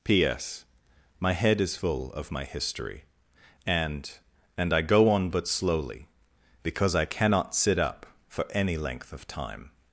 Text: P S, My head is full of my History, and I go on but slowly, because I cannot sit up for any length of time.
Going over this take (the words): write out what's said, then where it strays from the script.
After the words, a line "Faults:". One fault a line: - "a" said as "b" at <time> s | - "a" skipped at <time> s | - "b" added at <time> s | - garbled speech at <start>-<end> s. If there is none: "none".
P S, My head is full of my History, and and I go on but slowly, because I cannot sit up for any length of time.
Faults:
- "and" added at 4.6 s